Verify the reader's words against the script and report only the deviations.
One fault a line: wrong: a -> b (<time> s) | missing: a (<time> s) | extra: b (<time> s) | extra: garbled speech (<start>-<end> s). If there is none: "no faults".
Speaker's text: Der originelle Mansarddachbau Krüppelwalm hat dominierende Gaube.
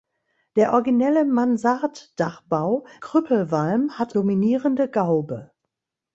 no faults